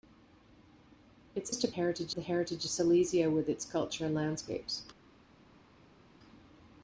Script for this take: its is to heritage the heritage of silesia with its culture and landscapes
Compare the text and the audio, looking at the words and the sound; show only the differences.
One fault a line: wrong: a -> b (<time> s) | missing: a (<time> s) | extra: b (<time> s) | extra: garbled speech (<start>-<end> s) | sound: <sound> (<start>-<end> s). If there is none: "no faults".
no faults